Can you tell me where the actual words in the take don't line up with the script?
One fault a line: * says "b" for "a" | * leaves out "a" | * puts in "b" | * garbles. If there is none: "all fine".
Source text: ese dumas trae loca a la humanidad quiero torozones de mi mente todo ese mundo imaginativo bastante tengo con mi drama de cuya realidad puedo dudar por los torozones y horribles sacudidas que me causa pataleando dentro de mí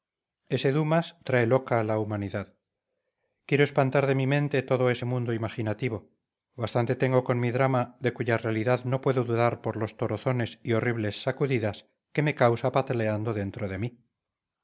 * says "espantar" for "torozones"
* puts in "no"